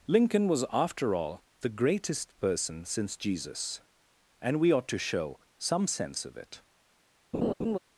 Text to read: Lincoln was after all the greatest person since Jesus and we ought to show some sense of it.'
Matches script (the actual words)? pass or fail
pass